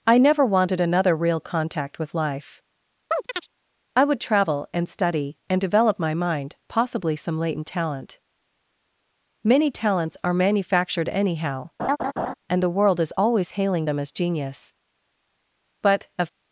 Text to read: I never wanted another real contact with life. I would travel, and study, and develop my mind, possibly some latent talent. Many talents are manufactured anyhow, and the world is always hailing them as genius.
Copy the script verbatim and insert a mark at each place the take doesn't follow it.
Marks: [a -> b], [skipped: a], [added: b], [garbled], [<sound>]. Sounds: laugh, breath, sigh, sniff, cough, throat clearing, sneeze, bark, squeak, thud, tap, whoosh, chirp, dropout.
I never wanted another real contact with life. [chirp] I would travel, and study, and develop my mind, possibly some latent talent. Many talents are manufactured anyhow, [laugh] and the world is always hailing them as genius. [added: But of]